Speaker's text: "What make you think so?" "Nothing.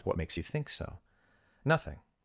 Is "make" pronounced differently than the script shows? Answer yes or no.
yes